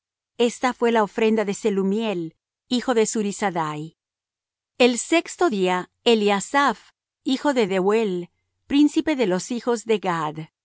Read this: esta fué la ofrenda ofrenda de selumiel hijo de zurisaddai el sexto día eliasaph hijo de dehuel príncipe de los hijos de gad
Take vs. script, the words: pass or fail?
fail